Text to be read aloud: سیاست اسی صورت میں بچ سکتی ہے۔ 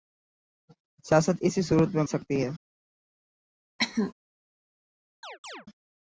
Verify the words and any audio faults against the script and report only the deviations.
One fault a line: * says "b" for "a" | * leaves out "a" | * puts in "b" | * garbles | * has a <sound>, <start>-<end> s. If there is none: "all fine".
* leaves out "بچ"
* has a cough, 3.8-4.1 s
* has a chirp, 5.2-5.7 s